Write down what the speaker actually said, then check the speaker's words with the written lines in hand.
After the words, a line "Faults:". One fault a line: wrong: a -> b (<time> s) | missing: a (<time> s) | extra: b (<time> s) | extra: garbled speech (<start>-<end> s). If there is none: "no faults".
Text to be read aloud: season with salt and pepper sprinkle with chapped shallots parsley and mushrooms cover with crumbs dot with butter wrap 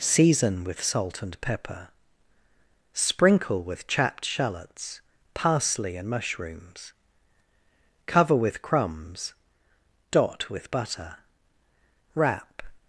season with salt and pepper sprinkle with chapped shallots parsley and mushrooms cover with crumbs dot with butter wrap
Faults:
no faults